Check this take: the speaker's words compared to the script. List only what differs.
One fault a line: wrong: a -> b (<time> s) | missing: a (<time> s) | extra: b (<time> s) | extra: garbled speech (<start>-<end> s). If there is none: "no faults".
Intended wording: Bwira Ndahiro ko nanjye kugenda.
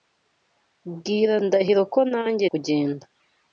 no faults